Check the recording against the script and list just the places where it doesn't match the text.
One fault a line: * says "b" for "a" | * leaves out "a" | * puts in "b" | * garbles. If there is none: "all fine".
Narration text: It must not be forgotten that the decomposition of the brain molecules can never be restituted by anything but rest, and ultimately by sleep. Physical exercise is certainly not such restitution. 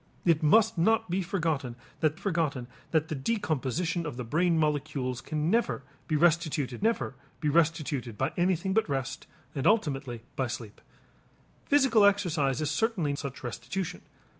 * puts in "forgotten that"
* puts in "never be restituted"
* leaves out "not"